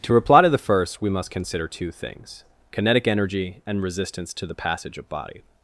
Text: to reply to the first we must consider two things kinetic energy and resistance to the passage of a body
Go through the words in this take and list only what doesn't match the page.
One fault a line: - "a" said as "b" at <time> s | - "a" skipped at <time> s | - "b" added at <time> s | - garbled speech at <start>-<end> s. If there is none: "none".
- "a" skipped at 5.1 s